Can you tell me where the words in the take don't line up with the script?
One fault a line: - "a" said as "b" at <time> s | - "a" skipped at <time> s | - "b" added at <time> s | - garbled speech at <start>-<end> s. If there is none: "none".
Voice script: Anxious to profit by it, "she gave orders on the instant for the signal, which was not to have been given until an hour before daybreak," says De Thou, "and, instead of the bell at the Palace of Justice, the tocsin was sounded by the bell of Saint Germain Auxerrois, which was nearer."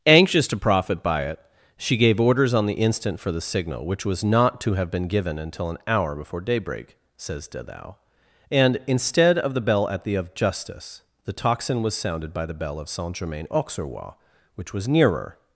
- "Palace" skipped at 10.2 s